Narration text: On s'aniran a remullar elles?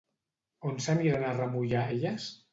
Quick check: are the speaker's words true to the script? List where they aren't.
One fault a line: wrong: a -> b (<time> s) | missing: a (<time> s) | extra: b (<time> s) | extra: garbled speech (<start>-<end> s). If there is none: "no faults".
no faults